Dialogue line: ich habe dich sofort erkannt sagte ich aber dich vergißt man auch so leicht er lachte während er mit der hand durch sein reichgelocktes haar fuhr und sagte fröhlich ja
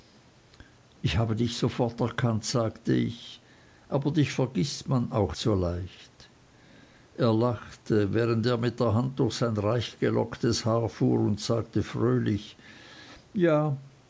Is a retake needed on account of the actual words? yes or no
no